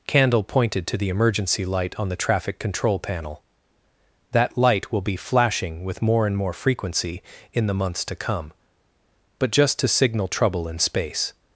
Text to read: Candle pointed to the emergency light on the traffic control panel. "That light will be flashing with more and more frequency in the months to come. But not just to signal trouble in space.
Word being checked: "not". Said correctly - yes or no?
no